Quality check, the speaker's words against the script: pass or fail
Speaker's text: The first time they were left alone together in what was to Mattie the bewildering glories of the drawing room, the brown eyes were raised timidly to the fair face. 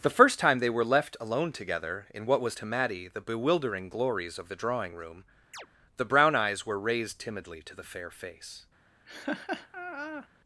pass